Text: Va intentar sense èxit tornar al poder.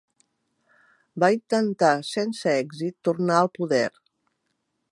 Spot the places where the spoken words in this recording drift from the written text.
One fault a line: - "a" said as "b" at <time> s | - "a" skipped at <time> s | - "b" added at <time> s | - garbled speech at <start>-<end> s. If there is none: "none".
none